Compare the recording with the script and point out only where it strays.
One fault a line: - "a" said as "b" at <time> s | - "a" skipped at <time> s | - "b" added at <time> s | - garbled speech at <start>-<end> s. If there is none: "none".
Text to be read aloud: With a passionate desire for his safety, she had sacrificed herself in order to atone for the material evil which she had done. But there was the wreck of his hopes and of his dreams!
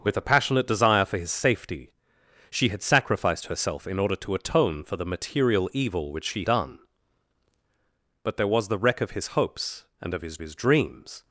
- "had" skipped at 6.5 s
- "his" added at 10.4 s